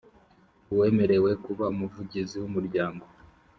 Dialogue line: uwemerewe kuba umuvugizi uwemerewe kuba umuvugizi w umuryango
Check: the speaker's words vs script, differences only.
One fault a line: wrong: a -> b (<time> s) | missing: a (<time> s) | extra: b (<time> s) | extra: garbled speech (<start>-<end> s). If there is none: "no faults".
missing: uwemerewe kuba umuvugizi (2.3 s)